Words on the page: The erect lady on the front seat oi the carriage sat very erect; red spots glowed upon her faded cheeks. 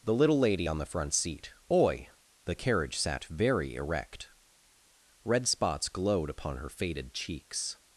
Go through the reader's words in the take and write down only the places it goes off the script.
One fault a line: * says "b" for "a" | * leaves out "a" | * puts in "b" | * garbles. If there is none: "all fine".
* says "little" for "erect"